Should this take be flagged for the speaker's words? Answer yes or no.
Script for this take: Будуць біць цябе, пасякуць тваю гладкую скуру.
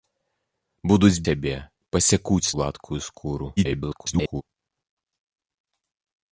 yes